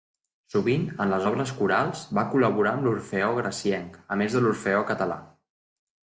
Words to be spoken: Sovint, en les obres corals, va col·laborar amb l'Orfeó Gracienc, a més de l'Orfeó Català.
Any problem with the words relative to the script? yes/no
no